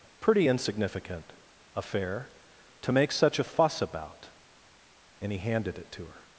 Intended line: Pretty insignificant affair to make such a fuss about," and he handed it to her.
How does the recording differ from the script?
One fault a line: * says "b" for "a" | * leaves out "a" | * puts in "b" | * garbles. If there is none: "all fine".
all fine